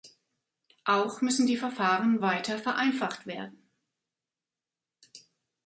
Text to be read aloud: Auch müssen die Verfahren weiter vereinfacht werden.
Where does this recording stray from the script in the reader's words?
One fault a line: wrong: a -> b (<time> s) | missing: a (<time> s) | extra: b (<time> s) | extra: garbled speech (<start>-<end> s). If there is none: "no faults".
no faults